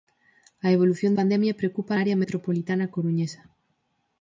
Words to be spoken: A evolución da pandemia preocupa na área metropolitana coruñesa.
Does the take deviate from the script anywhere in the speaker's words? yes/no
yes